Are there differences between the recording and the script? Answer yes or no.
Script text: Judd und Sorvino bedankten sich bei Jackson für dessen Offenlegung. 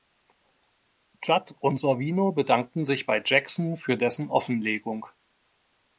no